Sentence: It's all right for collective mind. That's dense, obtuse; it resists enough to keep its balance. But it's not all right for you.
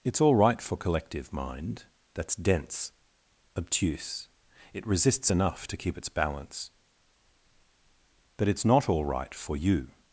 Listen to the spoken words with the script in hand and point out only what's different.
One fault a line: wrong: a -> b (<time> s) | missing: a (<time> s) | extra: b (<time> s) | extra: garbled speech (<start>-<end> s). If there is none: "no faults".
no faults